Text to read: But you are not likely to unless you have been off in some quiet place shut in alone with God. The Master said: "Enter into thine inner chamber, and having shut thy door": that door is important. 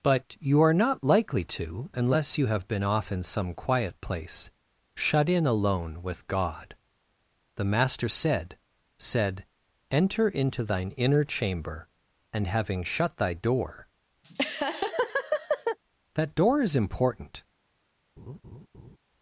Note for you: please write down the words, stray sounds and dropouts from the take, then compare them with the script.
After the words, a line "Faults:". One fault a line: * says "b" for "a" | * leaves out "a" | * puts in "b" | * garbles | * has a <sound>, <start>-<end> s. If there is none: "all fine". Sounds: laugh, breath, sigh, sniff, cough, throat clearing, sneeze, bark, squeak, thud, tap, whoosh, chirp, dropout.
But you are not likely to unless you have been off in some quiet place shut in alone with God. The Master said said: "Enter into thine inner chamber, and having shut thy door": that door is important.
Faults:
* puts in "said"
* has a laugh, 14.2-15.8 s
* has a laugh, 18.2-19.0 s